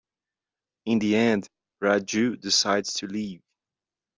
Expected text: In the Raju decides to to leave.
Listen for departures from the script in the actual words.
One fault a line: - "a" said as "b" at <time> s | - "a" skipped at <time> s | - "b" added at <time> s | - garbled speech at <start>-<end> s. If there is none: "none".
- "end" added at 1.1 s
- "to" skipped at 3.1 s